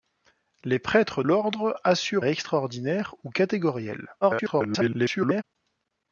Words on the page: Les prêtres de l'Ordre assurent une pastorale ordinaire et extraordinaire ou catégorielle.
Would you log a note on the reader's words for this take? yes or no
yes